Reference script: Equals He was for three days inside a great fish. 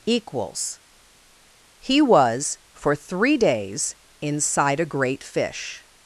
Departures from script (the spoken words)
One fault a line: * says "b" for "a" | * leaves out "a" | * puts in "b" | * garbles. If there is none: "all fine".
all fine